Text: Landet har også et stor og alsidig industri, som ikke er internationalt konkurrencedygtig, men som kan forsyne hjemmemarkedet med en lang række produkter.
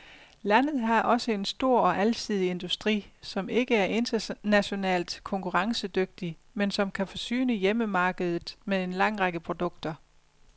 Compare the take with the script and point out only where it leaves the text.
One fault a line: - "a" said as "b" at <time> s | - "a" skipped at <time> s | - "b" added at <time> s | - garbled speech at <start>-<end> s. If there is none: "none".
- "et" said as "en" at 1.3 s